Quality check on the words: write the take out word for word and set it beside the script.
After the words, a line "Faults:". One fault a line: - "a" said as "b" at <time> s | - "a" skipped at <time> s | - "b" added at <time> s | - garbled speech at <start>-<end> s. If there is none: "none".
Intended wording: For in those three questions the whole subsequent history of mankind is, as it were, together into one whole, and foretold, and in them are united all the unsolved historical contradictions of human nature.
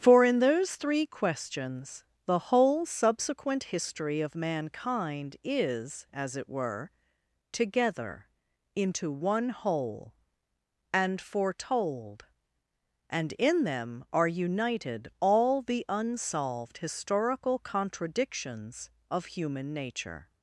For in those three questions the whole subsequent history of mankind is, as it were, together into one whole, and foretold, and in them are united all the unsolved historical contradictions of human nature.
Faults:
none